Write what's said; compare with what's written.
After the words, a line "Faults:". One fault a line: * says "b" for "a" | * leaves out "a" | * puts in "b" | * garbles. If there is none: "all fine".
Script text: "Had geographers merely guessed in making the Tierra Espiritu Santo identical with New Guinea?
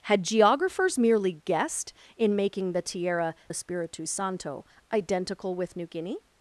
"Had geographers merely guessed in making the Tierra Espiritu Santo identical with New Guinea?
Faults:
all fine